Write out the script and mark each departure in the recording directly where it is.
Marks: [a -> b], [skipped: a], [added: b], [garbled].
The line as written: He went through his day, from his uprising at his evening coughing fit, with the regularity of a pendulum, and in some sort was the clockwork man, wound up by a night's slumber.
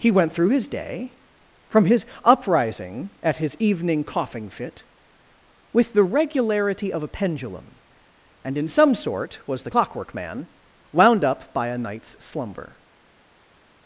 He went through his day, from his uprising at his evening coughing fit, with the regularity of a pendulum, and in some sort was the clockwork man, wound up by a night's slumber.